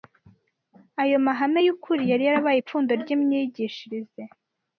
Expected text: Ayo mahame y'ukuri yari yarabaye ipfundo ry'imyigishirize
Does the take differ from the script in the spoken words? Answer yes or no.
no